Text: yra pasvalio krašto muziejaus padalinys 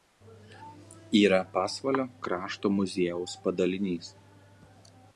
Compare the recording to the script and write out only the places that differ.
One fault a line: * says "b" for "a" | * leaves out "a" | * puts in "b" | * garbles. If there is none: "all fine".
all fine